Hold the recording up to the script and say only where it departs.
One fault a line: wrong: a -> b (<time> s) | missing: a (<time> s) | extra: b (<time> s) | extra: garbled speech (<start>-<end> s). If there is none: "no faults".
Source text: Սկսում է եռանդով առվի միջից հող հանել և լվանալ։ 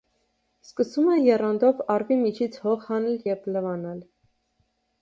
no faults